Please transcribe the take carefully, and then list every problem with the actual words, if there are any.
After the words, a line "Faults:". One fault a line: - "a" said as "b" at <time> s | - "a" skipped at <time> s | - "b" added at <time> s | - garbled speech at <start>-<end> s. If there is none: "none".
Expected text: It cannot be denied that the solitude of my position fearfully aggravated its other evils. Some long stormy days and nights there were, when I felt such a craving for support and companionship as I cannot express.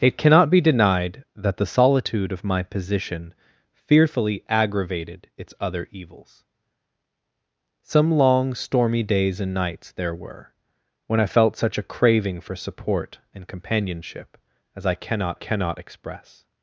It cannot be denied that the solitude of my position fearfully aggravated its other evils. Some long stormy days and nights there were, when I felt such a craving for support and companionship as I cannot cannot express.
Faults:
- "cannot" added at 15.3 s